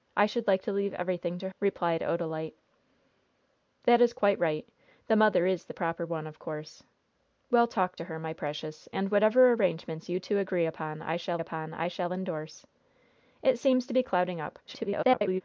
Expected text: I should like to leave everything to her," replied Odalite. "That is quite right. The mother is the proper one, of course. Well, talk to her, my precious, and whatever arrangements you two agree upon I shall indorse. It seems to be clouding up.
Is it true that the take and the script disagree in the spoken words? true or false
true